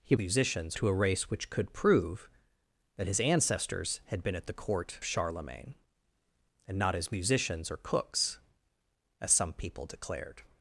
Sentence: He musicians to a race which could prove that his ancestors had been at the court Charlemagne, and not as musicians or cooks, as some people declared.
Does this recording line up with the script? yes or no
yes